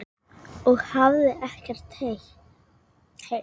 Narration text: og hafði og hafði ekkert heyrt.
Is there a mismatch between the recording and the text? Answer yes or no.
yes